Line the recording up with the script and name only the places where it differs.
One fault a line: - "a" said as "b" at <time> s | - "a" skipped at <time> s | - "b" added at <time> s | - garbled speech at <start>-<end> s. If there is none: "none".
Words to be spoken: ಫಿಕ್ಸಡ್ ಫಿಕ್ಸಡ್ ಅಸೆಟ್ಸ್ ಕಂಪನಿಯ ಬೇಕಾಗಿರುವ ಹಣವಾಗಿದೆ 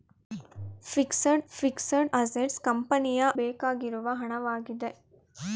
none